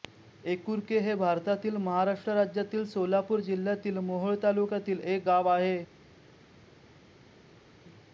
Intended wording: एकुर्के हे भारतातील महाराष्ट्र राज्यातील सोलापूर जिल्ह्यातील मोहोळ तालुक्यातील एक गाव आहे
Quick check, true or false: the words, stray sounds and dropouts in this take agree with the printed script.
true